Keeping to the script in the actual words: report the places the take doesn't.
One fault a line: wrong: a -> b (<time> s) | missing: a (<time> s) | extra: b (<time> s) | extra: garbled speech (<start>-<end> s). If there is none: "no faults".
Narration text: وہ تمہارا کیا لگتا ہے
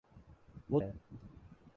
missing: تمہارا کیا لگتا (0.8 s)